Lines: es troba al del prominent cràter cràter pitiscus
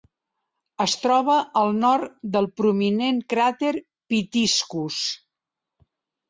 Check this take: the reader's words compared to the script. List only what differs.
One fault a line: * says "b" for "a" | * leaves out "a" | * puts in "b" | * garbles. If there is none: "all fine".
* puts in "nord"
* leaves out "cràter"